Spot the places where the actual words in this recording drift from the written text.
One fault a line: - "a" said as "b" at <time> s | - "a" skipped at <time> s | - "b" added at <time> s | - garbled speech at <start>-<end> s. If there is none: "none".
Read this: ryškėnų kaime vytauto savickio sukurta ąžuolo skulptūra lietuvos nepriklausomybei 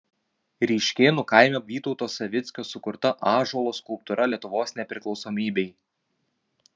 none